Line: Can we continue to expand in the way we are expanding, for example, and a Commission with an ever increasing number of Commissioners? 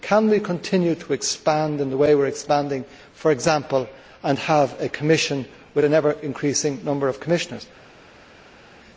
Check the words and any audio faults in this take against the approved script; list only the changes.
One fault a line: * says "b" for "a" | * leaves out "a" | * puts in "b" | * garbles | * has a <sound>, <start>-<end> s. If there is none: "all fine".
* puts in "have"